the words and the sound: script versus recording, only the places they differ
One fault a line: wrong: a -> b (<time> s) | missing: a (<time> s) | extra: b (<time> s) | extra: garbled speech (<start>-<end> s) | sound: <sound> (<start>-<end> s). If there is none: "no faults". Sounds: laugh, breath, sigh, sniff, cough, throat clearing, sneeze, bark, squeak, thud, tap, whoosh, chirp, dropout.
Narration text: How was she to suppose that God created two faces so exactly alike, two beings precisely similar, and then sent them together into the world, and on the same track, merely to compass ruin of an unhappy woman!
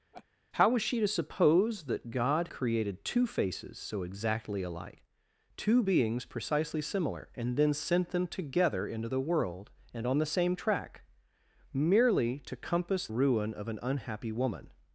sound: laugh (0.1-0.3 s)